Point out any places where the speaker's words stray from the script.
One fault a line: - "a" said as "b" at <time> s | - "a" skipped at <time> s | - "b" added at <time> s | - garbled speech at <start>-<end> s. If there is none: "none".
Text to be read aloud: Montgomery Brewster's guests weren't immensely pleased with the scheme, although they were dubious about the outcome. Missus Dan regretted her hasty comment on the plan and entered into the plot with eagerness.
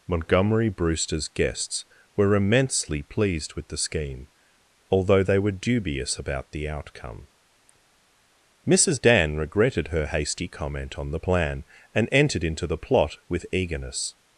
- "weren't" said as "were" at 2.1 s